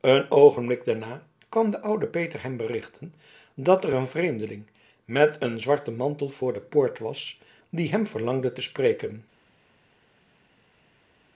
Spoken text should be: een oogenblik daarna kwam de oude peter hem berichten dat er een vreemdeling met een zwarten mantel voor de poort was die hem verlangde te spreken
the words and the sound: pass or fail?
pass